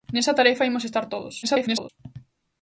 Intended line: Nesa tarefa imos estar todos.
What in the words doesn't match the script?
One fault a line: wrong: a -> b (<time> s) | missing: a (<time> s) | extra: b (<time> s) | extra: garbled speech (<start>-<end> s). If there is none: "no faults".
extra: garbled speech (1.4-1.9 s)